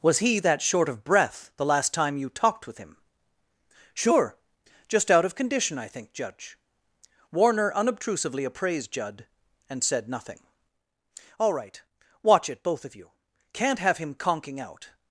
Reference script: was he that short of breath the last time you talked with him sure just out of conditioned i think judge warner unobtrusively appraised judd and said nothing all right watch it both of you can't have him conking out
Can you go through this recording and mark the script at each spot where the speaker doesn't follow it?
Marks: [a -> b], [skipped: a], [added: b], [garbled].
was he that short of breath the last time you talked with him sure just out of [conditioned -> condition] i think judge warner unobtrusively appraised judd and said nothing all right watch it both of you can't have him conking out